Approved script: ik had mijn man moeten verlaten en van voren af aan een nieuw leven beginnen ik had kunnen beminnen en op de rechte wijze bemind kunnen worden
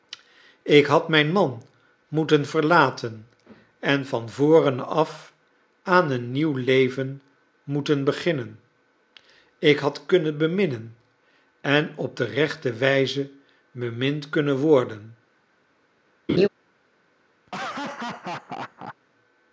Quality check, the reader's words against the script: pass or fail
fail